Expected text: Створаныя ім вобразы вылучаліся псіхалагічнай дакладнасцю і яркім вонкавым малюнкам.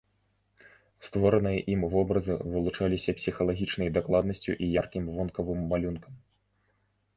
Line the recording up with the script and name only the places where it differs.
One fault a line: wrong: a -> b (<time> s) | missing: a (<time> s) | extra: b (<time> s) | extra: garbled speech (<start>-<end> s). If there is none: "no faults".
no faults